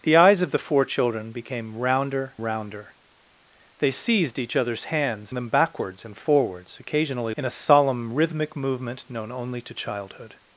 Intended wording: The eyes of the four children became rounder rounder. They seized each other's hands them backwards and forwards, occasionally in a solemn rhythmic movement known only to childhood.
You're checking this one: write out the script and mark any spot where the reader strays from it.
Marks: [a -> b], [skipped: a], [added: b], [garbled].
The eyes of the four children became rounder rounder. They seized each other's hands them backwards and forwards, occasionally in a solemn rhythmic movement known only to childhood.